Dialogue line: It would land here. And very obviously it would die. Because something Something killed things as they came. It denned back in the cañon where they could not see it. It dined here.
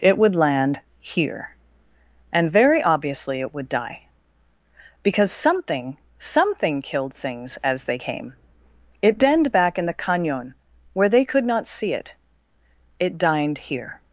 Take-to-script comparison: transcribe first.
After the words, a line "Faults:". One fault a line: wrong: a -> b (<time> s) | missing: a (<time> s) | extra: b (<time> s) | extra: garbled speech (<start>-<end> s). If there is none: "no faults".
It would land here. And very obviously it would die. Because something Something killed things as they came. It denned back in the cañon where they could not see it. It dined here.
Faults:
no faults